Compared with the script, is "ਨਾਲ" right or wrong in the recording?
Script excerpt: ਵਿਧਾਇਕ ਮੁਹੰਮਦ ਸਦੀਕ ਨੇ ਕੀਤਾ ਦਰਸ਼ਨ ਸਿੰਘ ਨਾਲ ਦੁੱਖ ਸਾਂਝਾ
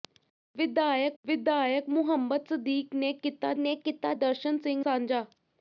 wrong